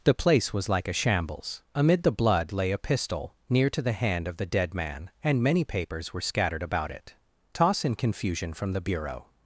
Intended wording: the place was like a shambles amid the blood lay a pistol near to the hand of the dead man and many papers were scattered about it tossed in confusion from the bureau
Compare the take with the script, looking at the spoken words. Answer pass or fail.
fail